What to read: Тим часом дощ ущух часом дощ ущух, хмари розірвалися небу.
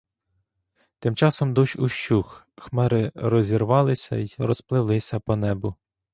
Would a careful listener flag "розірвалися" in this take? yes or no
yes